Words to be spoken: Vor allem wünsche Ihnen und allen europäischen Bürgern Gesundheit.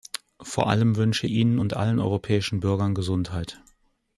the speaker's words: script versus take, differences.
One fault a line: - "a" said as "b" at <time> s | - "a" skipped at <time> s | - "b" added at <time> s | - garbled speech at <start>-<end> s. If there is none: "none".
none